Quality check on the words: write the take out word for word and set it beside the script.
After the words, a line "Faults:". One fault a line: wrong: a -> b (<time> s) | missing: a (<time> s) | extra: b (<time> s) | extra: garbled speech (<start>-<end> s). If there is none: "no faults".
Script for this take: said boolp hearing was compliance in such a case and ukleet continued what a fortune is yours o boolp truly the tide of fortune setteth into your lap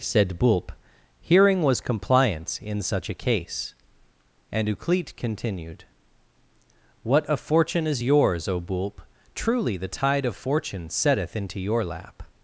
said boolp hearing was compliance in such a case and ukleet continued what a fortune is yours o boolp truly the tide of fortune setteth into your lap
Faults:
no faults